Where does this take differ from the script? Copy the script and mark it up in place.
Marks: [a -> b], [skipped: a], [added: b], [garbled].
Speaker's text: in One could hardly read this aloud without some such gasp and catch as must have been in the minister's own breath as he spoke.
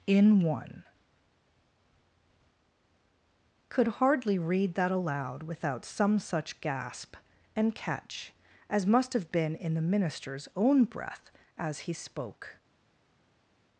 in One could hardly read [this -> that] aloud without some such gasp and catch as must have been in the minister's own breath as he spoke.